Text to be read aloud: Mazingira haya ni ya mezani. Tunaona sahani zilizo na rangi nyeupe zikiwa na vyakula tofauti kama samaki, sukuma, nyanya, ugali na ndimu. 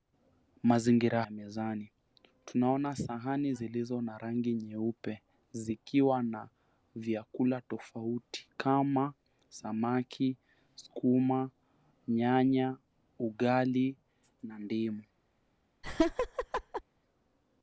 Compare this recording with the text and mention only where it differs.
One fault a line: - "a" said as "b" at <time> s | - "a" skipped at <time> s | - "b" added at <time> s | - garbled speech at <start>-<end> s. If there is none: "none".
- "haya ni" skipped at 1.2 s